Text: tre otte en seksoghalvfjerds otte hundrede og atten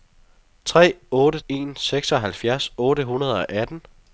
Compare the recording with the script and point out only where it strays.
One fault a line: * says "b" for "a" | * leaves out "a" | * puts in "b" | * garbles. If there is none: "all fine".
all fine